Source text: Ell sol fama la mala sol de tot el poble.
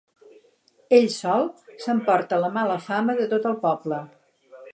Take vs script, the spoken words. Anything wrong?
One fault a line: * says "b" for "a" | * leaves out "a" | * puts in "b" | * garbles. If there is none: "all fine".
* says "s'emporta" for "fama"
* says "fama" for "sol"